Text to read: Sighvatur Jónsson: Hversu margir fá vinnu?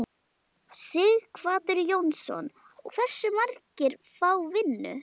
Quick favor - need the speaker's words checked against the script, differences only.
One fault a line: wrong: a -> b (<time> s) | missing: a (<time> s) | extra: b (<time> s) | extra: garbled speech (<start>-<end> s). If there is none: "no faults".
no faults